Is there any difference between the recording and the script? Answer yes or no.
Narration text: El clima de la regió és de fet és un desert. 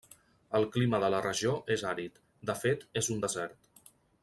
yes